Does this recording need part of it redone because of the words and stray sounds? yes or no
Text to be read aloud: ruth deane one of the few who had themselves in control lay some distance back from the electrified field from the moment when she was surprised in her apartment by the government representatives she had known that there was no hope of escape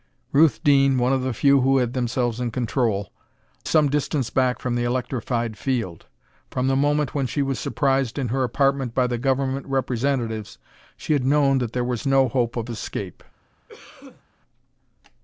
yes